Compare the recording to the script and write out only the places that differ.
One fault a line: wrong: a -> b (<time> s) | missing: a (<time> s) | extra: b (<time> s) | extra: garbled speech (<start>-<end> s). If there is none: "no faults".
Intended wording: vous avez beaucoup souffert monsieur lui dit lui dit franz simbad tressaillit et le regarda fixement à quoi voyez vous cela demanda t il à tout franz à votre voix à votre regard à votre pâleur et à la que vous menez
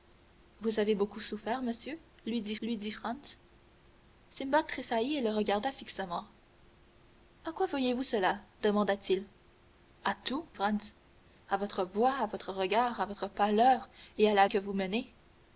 no faults